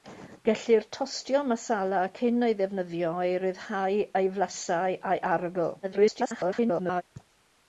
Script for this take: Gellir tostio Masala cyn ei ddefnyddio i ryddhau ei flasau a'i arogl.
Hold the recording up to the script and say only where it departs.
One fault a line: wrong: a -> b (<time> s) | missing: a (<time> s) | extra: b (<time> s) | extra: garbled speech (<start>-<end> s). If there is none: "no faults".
extra: garbled speech (5.8-7.0 s)